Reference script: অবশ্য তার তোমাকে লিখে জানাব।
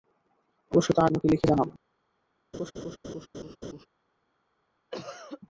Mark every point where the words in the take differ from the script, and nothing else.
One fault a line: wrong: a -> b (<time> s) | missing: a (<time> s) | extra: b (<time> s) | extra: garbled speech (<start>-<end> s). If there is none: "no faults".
no faults